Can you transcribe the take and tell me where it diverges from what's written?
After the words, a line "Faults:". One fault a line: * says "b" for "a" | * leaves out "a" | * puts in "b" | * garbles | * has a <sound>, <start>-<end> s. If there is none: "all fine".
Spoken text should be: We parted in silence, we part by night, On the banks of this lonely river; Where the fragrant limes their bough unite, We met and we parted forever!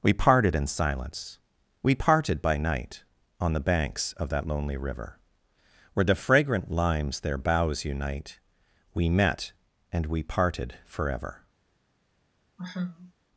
We parted in silence, we parted by night, On the banks of that lonely river; Where the fragrant limes their boughs unite, We met and we parted forever!
Faults:
* says "parted" for "part"
* says "that" for "this"
* says "boughs" for "bough"
* has a sigh, 12.6-13.1 s